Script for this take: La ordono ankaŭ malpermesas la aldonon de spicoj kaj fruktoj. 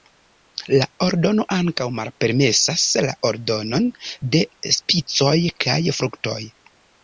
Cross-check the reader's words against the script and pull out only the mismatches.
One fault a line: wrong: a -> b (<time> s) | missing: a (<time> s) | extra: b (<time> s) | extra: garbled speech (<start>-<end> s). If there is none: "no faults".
no faults